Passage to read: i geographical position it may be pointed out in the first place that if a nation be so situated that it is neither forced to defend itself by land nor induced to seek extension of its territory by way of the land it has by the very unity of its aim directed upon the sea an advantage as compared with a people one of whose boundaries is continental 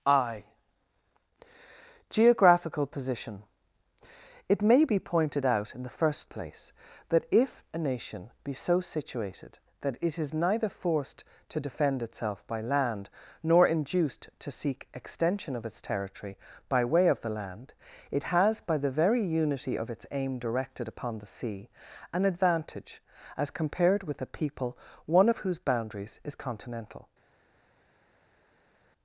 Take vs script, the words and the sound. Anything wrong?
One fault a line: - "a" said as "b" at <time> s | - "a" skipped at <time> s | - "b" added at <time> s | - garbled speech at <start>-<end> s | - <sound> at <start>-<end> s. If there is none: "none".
none